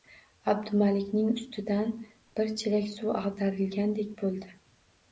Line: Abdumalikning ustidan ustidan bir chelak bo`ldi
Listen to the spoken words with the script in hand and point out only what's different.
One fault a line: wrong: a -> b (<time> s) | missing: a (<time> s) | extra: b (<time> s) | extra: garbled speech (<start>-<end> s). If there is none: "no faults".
missing: ustidan (1.9 s)
extra: suv ag`darilgandek (3.0 s)